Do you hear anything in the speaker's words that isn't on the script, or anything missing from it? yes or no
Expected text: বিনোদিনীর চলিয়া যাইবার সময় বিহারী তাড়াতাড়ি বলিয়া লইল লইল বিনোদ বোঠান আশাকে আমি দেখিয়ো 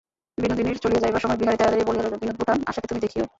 yes